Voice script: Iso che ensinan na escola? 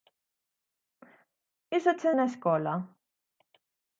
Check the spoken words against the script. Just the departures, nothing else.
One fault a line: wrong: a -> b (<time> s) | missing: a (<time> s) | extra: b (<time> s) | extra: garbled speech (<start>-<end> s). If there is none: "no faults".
missing: ensinan (2.1 s)